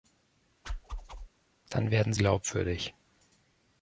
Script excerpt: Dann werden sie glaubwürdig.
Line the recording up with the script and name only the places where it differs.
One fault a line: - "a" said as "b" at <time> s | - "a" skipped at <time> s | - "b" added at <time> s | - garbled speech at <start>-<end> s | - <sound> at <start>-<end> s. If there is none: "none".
- whoosh at 0.6-1.3 s
- "sie" skipped at 2.1 s